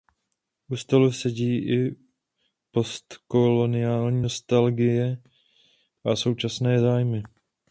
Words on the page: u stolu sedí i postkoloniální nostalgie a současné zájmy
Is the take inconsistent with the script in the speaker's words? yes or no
no